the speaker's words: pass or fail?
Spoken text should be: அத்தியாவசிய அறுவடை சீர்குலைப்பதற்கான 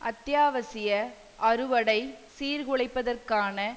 pass